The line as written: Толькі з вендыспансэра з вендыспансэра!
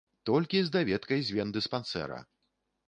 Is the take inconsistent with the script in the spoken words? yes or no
yes